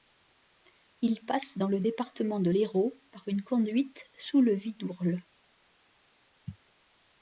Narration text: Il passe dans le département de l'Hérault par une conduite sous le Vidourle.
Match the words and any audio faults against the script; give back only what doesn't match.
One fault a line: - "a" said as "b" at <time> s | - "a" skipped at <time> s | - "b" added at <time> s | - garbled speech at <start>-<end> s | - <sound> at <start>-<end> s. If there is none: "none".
none